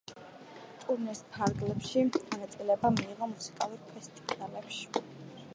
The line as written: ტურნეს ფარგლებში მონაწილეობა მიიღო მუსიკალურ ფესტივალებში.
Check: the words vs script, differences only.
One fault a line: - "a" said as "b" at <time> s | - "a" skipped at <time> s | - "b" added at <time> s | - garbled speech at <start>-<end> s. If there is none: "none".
none